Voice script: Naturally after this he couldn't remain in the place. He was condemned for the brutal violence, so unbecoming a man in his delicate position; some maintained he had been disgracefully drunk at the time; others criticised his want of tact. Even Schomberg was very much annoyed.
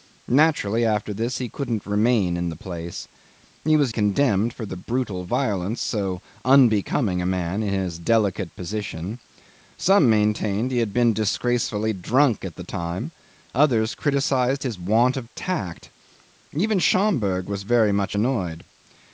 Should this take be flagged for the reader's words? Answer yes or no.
no